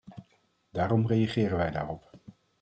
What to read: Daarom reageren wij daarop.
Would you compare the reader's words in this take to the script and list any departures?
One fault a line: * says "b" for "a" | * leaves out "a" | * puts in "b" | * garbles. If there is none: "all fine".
all fine